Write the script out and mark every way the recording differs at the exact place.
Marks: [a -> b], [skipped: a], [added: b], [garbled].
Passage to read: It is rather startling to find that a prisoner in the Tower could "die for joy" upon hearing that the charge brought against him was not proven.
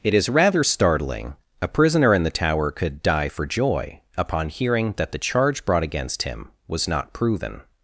It is rather startling [skipped: to find that] a prisoner in the Tower could "die for joy" upon hearing that the charge brought against him was not proven.